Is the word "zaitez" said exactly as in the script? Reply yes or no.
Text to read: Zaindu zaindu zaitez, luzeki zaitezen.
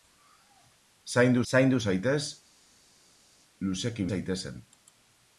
yes